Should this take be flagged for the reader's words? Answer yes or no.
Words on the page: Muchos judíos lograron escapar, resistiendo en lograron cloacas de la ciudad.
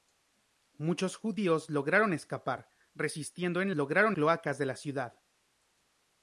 no